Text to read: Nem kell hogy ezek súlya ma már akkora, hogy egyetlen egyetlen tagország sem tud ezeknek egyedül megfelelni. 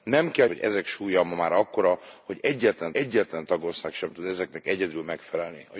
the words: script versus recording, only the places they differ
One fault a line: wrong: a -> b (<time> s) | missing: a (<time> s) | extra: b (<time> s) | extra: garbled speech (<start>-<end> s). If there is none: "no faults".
no faults